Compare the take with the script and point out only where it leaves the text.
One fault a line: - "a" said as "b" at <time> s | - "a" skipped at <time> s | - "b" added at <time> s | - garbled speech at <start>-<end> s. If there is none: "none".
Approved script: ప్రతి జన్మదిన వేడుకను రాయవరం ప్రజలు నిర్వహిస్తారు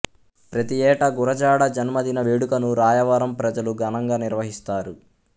- "ఏటా గురజాడ" added at 0.8 s
- "ఘనంగా" added at 3.8 s